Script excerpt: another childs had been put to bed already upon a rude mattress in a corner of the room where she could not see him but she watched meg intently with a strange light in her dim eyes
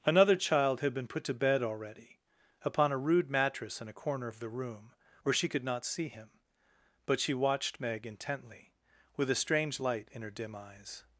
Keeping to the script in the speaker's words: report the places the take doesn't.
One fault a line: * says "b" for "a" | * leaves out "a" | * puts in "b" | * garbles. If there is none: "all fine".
* says "child" for "childs"